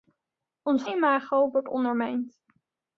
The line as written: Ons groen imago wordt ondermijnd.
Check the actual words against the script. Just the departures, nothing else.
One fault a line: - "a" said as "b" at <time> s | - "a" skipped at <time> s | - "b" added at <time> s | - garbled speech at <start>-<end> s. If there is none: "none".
- "groen" skipped at 0.8 s